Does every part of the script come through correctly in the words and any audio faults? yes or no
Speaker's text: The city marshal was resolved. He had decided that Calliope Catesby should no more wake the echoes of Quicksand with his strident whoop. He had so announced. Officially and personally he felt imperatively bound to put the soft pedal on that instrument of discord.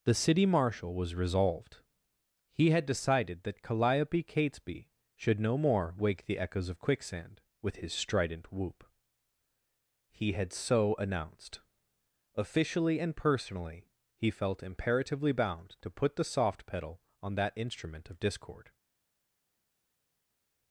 yes